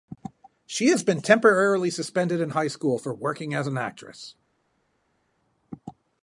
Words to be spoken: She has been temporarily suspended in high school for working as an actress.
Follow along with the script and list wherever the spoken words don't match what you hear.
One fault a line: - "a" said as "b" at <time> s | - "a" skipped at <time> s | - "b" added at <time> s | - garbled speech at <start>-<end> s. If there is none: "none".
none